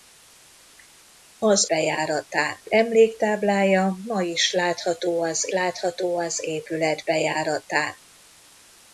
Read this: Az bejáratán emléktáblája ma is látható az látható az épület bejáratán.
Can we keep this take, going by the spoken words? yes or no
yes